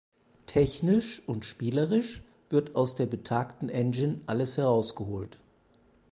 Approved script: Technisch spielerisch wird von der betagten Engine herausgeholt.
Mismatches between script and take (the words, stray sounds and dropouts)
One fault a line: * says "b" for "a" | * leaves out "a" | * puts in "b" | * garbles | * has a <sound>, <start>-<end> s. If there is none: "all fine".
* puts in "und"
* says "aus" for "von"
* puts in "alles"